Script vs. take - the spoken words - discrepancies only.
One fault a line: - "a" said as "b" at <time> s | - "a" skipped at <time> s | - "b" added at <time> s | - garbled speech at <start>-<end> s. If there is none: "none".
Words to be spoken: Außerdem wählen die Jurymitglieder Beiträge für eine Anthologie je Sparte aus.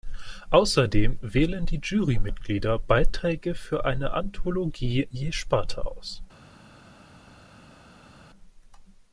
none